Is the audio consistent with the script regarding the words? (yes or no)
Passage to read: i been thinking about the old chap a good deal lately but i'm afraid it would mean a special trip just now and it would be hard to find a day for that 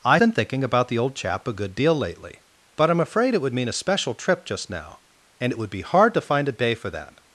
yes